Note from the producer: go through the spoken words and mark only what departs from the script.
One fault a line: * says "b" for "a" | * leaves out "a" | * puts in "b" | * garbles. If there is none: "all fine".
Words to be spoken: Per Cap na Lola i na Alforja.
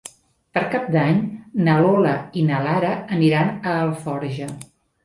* puts in "d'Any"
* puts in "Lara aniran a"